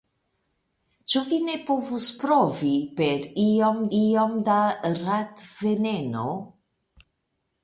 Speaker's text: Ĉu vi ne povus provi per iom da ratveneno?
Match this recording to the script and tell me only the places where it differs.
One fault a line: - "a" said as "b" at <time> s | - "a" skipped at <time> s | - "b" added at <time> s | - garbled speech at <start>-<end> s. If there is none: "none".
- "iom" added at 4.0 s